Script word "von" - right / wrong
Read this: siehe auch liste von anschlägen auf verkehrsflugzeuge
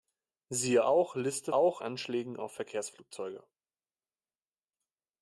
wrong